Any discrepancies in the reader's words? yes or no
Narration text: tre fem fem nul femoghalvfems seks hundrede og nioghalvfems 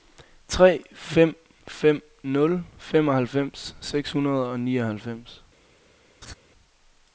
no